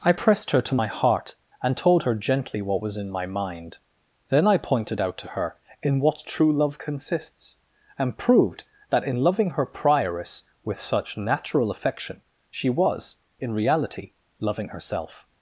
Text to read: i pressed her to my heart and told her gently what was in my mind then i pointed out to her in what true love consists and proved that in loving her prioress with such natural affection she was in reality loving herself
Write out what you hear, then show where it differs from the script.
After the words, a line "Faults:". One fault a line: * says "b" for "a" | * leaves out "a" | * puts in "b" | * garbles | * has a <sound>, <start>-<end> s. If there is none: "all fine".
i pressed her to my heart and told her gently what was in my mind then i pointed out to her in what true love consists and proved that in loving her prioress with such natural affection she was in reality loving herself
Faults:
all fine